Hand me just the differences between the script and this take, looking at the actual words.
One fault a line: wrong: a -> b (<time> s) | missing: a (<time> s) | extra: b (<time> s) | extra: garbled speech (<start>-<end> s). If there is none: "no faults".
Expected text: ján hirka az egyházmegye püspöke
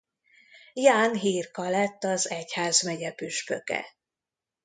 extra: lett (1.7 s)